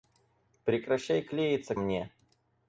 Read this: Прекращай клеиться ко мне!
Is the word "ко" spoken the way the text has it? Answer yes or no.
no